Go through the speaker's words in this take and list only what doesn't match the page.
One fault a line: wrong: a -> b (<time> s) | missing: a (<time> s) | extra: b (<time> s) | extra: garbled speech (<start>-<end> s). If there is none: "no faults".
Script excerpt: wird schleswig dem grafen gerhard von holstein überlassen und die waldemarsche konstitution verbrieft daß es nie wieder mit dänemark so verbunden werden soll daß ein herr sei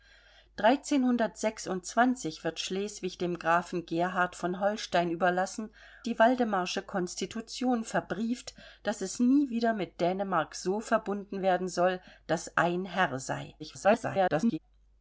missing: und (5.7 s)
extra: garbled speech (13.6-14.6 s)